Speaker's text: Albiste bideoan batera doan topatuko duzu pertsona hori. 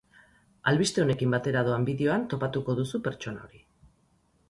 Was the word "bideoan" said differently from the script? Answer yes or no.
yes